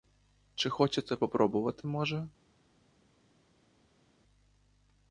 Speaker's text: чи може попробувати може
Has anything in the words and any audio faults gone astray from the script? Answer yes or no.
yes